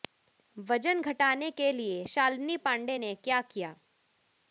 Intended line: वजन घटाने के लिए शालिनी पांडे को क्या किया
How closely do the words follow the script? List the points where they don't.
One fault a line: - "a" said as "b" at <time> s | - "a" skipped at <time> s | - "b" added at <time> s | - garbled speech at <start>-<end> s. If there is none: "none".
- "को" said as "ने" at 3.0 s